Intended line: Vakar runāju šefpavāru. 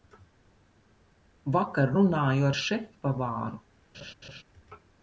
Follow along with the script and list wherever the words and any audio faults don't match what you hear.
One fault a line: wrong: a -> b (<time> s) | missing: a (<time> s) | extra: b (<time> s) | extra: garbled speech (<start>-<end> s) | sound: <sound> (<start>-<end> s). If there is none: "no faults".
extra: ar (2.5 s)
sound: laugh (3.9-4.4 s)